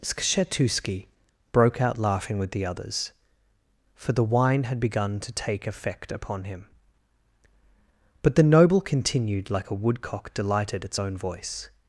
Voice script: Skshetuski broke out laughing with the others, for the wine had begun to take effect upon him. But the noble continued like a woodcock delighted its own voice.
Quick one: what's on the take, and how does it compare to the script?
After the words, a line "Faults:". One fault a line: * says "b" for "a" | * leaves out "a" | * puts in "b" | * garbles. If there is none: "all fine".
Skshetuski broke out laughing with the others, for the wine had begun to take effect upon him. But the noble continued like a woodcock delighted its own voice.
Faults:
all fine